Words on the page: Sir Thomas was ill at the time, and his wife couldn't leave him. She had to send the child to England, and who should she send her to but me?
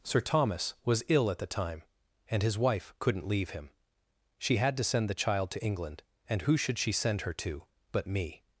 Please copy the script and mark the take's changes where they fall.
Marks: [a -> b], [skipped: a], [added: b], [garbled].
Sir Thomas was ill at the time, and his wife couldn't leave him. She had to send the child to England, and who should she send her to but me?